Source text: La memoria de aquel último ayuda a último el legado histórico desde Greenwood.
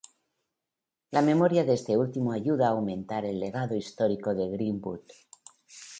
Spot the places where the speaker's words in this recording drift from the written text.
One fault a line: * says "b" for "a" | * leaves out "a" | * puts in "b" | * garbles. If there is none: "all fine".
* says "este" for "aquel"
* says "aumentar" for "último"
* says "de" for "desde"